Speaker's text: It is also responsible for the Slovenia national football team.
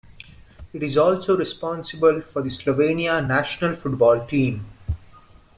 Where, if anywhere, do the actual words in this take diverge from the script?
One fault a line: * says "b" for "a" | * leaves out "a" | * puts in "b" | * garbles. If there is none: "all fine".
all fine